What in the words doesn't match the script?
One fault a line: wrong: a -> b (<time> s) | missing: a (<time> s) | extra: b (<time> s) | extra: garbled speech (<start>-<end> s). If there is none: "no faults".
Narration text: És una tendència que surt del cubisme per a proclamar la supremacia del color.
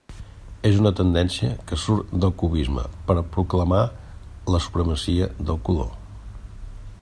no faults